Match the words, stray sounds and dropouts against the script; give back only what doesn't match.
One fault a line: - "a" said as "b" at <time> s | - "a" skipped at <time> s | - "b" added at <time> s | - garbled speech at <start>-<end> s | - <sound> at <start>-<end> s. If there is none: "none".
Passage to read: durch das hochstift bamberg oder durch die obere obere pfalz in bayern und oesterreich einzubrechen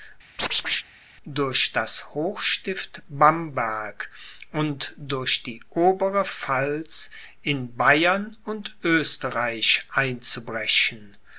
- chirp at 0.4-0.9 s
- "oder" said as "und" at 4.5 s
- "obere" skipped at 6.2 s